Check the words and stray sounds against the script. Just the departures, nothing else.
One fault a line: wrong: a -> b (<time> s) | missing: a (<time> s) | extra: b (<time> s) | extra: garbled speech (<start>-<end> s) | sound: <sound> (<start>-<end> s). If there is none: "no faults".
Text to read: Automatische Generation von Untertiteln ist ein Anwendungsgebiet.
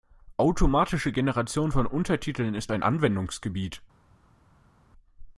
no faults